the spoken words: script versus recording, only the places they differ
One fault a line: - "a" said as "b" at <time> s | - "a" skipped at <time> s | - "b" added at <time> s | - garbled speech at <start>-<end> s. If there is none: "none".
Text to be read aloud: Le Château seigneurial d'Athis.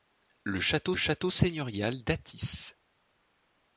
- "Château" added at 0.9 s